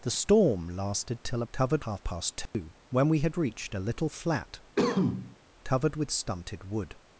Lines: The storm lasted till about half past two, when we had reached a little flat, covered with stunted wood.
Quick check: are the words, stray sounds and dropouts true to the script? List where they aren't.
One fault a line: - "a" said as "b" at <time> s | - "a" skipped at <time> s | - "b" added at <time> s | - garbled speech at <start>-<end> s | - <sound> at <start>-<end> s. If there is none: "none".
- "about" said as "covered" at 1.5 s
- dropout at 2.5-2.5 s
- cough at 4.8-5.4 s